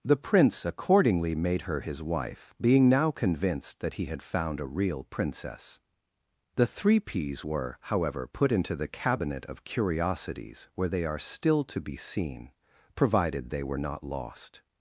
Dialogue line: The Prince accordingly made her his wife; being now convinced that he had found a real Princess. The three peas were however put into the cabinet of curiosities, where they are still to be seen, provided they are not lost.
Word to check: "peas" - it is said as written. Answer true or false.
true